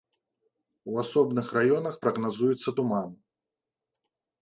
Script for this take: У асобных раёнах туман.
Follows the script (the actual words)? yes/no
no